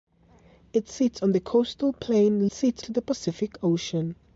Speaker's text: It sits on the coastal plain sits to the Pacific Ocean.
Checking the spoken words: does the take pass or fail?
pass